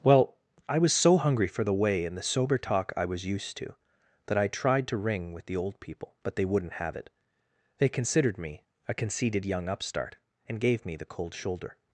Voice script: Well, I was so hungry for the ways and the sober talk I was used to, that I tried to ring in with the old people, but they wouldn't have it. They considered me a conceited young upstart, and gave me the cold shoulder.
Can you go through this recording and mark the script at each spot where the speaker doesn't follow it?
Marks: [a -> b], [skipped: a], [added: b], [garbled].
Well, I was so hungry for the [ways -> way] and the sober talk I was used to, that I tried to ring [skipped: in] with the old people, but they wouldn't have it. They considered me a conceited young upstart, and gave me the cold shoulder.